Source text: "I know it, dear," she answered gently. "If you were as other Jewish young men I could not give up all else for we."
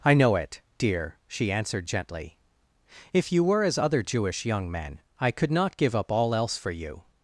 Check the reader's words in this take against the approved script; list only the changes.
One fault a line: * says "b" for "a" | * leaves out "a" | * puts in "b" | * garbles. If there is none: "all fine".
* says "you" for "we"